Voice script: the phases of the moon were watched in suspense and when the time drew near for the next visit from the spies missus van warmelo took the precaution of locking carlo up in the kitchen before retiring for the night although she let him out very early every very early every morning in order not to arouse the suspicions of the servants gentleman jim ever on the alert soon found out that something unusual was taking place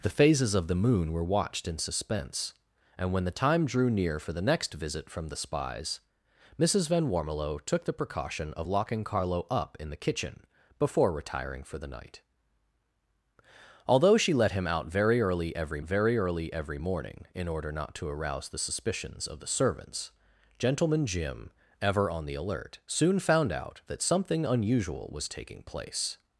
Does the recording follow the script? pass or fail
pass